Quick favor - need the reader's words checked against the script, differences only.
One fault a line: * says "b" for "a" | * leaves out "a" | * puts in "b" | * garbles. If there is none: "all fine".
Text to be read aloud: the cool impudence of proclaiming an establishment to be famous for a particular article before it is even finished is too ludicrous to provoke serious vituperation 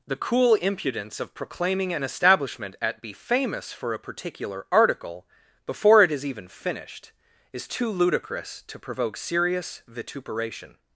* says "at" for "to"